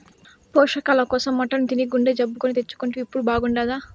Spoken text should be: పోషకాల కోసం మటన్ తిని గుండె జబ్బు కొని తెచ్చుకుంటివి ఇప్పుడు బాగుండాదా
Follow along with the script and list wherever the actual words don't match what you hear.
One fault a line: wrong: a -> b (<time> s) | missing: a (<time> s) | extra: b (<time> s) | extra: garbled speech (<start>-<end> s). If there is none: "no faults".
no faults